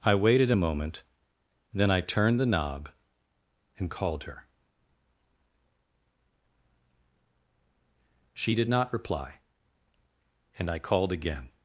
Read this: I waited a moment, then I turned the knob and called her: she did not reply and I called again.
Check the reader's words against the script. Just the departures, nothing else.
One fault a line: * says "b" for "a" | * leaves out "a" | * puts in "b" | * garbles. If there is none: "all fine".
all fine